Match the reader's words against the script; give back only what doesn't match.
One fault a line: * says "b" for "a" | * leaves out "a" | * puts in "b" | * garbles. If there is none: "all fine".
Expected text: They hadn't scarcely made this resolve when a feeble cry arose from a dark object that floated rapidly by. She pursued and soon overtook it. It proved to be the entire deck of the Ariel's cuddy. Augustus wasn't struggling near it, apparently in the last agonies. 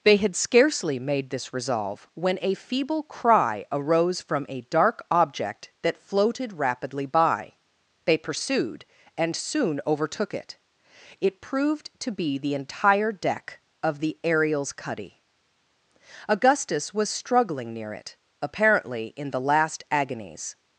* says "had" for "hadn't"
* says "They" for "She"
* says "was" for "wasn't"